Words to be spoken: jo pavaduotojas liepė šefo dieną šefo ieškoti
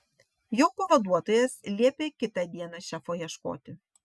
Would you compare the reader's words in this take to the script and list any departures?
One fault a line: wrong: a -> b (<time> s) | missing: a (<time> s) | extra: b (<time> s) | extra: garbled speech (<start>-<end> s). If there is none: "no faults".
wrong: šefo -> kitą (2.2 s)